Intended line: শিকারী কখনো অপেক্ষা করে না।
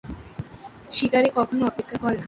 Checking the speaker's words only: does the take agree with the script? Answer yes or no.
yes